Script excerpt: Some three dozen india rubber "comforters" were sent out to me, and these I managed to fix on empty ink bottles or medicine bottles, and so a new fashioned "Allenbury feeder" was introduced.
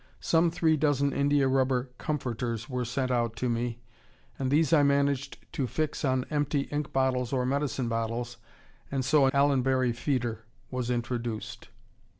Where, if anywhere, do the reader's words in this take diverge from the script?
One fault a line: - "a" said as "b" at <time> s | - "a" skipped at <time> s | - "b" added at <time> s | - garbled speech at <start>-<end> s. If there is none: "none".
- "new fashioned" skipped at 9.3 s